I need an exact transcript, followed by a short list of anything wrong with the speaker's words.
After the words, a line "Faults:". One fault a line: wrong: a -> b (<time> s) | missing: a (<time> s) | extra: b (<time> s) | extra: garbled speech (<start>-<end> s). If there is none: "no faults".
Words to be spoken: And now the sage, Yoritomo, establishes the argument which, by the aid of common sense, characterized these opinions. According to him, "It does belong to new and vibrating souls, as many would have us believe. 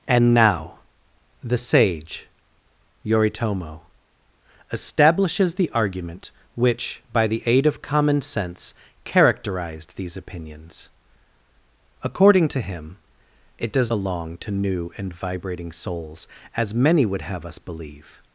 And now the sage, Yoritomo, establishes the argument which, by the aid of common sense, characterized these opinions. According to him, "It does belong to new and vibrating souls, as many would have us believe.
Faults:
no faults